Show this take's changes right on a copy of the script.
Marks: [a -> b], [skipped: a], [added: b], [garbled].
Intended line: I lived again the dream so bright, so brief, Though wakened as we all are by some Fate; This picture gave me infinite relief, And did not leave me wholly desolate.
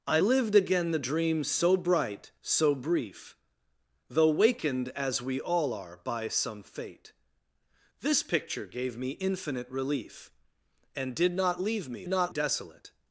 I lived again the dream so bright, so brief, Though wakened as we all are by some Fate; This picture gave me infinite relief, And did not leave me [wholly -> not] desolate.